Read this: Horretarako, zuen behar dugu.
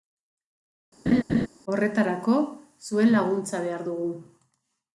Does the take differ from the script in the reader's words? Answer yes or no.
yes